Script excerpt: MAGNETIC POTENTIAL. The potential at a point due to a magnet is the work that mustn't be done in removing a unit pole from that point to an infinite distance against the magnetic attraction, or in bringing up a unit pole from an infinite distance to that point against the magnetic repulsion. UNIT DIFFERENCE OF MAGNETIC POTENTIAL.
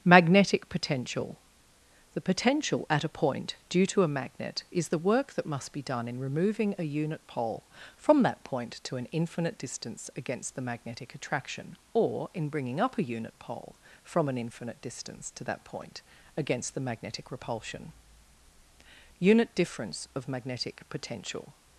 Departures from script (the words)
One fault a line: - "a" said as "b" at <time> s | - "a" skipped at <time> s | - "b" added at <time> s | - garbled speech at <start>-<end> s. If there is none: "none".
- "mustn't" said as "must" at 5.5 s